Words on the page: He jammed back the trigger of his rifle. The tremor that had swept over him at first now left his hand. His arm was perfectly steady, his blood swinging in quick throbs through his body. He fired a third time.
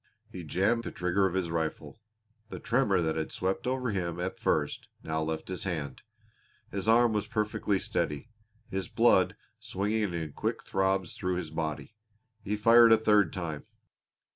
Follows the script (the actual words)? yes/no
no